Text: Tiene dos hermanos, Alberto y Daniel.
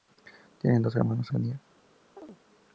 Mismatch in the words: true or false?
true